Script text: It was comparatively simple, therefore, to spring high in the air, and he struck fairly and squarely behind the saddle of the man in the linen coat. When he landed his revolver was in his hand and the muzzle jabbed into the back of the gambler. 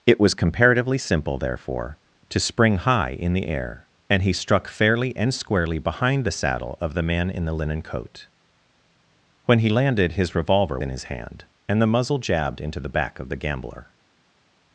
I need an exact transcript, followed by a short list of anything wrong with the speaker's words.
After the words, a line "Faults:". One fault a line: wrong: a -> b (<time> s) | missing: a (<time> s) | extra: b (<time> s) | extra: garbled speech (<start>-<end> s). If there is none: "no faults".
It was comparatively simple, therefore, to spring high in the air, and he struck fairly and squarely behind the saddle of the man in the linen coat. When he landed his revolver in his hand and the muzzle jabbed into the back of the gambler.
Faults:
missing: was (10.8 s)